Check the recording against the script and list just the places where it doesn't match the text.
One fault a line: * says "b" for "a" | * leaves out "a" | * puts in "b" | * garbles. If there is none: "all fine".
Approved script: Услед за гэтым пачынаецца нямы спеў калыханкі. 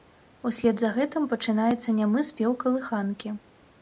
all fine